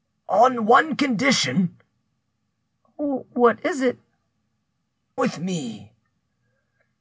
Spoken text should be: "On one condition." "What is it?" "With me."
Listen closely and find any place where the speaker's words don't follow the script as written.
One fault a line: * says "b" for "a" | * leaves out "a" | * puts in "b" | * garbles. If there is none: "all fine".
all fine